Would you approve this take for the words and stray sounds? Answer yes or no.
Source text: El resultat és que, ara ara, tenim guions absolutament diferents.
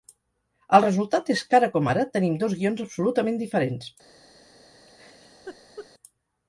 no